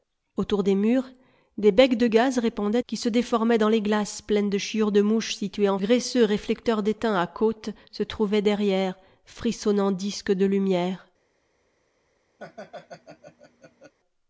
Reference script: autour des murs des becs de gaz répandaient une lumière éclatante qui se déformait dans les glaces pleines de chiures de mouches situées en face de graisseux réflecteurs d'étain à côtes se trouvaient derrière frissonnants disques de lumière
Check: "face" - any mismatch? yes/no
yes